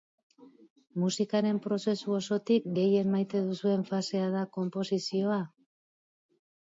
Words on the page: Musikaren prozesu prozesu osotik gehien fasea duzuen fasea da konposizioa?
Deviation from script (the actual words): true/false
true